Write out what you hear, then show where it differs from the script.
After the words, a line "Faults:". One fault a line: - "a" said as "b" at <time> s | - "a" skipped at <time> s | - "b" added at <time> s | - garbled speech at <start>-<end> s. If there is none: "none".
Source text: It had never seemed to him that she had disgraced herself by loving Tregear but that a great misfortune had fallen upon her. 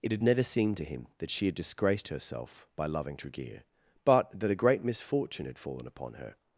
It had never seemed to him that she had disgraced herself by loving Tregear but that a great misfortune had fallen upon her.
Faults:
none